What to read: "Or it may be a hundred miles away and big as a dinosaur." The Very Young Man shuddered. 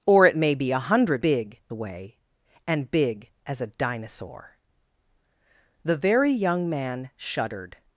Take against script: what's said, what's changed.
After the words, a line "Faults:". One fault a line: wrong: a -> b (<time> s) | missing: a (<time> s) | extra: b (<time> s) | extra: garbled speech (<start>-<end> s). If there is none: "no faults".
"Or it may be a hundred big away and big as a dinosaur." The Very Young Man shuddered.
Faults:
wrong: miles -> big (1.2 s)